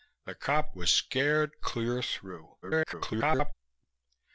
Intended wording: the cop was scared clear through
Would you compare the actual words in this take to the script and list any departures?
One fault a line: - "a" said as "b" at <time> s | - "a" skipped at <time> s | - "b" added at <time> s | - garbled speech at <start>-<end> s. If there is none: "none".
- garbled speech at 2.6-3.5 s